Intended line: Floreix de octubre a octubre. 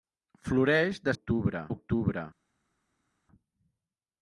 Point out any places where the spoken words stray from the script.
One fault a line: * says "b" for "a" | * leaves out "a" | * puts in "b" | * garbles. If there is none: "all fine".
all fine